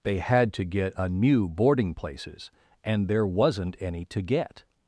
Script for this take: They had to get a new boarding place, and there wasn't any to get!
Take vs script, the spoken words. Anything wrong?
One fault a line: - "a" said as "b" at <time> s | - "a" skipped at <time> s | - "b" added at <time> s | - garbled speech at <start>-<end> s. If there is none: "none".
- "place" said as "places" at 1.9 s